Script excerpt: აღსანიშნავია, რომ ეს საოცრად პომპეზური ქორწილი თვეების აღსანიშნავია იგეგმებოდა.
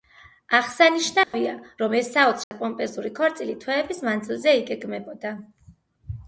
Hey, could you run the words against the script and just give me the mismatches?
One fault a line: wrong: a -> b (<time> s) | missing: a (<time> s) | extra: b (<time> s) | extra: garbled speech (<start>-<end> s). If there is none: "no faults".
wrong: აღსანიშნავია -> მანძილზე (4.1 s)